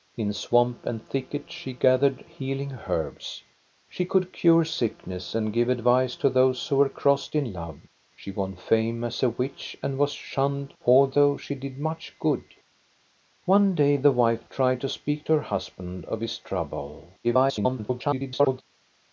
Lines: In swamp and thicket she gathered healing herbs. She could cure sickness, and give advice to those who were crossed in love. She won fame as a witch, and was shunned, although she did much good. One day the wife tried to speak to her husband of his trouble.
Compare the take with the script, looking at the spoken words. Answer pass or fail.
fail